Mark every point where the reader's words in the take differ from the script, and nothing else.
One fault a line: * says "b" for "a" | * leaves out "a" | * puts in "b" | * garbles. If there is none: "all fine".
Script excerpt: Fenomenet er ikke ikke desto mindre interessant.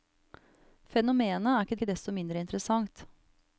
all fine